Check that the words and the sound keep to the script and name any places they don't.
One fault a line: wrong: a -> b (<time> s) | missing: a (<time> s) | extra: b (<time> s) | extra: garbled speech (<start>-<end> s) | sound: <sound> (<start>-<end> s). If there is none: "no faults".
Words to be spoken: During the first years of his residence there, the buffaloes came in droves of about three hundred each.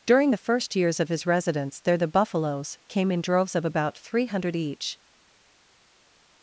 no faults